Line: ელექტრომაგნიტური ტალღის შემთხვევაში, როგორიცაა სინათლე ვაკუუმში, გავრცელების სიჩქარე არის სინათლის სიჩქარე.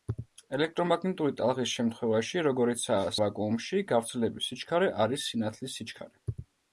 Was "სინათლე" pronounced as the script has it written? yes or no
no